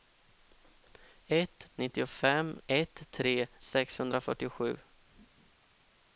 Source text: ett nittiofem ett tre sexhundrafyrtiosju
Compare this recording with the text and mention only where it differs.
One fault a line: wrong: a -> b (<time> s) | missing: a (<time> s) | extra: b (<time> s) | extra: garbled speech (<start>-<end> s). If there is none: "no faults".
no faults